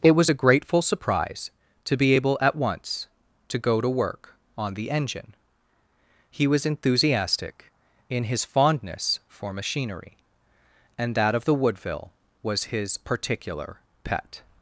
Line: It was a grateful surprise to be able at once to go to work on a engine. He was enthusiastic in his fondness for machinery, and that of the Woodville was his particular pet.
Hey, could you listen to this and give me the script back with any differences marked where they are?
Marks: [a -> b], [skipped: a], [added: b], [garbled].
It was a grateful surprise to be able at once to go to work on [a -> the] engine. He was enthusiastic in his fondness for machinery, and that of the Woodville was his particular pet.